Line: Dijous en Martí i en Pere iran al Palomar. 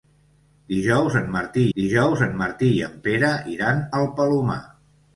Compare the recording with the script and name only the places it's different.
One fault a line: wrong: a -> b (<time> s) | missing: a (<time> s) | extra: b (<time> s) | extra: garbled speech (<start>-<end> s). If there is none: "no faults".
extra: dijous en Martí (1.8 s)